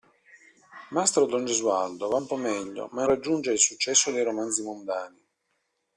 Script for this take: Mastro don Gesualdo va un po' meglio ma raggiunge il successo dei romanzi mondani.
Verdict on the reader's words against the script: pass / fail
pass